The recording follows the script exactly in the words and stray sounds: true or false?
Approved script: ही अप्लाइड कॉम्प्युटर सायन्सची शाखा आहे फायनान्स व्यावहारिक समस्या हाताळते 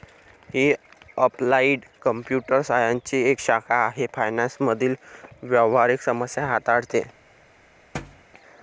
false